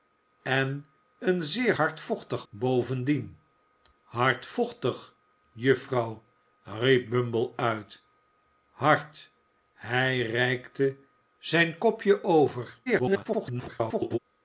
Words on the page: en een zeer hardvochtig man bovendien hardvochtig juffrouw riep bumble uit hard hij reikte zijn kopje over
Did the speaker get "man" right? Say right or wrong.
wrong